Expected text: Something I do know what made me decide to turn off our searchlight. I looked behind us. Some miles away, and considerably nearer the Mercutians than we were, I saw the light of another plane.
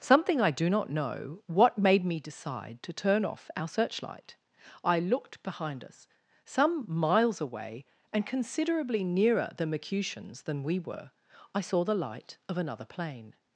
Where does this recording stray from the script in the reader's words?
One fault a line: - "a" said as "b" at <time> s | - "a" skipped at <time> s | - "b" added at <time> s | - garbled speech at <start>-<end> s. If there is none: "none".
- "not" added at 0.7 s